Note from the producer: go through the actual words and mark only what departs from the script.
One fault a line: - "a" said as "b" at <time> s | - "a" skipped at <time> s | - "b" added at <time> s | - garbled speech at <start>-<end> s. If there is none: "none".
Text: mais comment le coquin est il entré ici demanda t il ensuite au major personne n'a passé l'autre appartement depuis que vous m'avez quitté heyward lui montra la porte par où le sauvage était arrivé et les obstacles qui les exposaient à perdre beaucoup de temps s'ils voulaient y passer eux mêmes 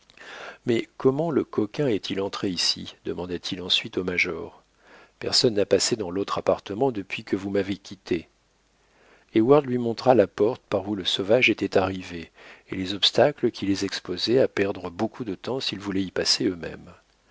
- "dans" added at 6.0 s